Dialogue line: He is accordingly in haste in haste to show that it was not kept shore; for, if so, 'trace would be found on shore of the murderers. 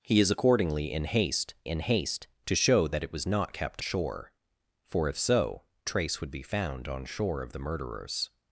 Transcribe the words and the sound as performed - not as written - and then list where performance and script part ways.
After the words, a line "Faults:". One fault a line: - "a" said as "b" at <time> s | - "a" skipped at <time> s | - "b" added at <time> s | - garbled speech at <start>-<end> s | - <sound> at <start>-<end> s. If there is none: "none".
He is accordingly in haste in haste to show that it was not kept shore; for, if so, 'trace would be found on shore of the murderers.
Faults:
none